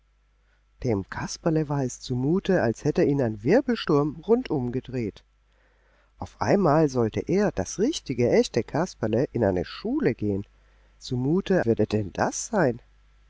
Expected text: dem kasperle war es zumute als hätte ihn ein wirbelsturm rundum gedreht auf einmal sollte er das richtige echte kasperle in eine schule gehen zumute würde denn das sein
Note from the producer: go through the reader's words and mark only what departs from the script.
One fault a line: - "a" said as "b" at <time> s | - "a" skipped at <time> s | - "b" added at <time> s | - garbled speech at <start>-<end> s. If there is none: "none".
none